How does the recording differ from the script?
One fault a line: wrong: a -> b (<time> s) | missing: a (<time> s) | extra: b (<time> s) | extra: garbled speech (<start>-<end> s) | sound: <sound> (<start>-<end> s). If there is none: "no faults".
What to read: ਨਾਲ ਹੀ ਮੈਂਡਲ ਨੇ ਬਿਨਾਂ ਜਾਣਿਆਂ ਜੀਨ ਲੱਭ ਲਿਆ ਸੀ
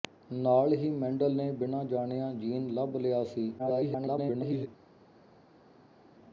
extra: garbled speech (3.6-4.7 s)